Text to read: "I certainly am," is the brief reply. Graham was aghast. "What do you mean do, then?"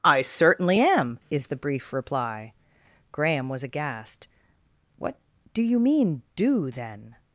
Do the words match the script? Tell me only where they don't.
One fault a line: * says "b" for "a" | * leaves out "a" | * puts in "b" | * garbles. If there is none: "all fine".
all fine